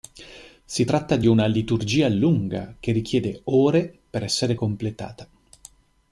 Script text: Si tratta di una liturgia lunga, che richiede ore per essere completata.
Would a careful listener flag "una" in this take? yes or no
no